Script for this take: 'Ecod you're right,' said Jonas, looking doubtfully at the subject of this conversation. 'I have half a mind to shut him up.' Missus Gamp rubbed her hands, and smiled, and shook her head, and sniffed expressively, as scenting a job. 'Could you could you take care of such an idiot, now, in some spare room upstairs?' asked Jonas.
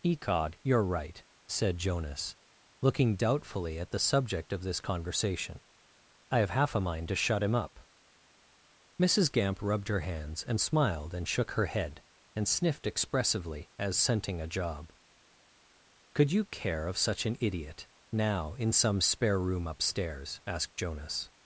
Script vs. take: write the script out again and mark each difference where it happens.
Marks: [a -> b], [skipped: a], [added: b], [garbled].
'Ecod you're right,' said Jonas, looking doubtfully at the subject of this conversation. 'I have half a mind to shut him up.' Missus Gamp rubbed her hands, and smiled, and shook her head, and sniffed expressively, as scenting a job. 'Could you [skipped: could you take] care of such an idiot, now, in some spare room upstairs?' asked Jonas.